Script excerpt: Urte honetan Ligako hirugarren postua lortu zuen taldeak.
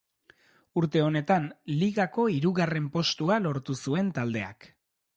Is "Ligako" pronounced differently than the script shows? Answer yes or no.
no